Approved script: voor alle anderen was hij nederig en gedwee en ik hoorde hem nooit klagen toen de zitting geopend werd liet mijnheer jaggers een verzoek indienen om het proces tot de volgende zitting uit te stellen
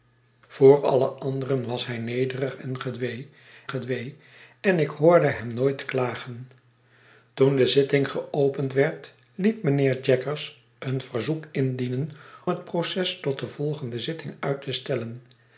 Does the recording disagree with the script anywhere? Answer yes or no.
yes